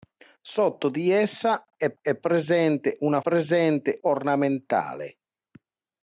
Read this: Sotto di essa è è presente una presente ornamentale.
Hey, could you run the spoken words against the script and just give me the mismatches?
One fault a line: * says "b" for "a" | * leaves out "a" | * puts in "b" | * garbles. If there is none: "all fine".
all fine